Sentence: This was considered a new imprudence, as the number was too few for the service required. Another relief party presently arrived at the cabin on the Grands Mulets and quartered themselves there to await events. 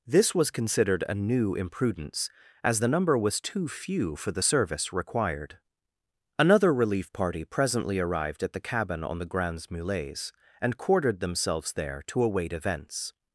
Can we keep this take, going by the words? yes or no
yes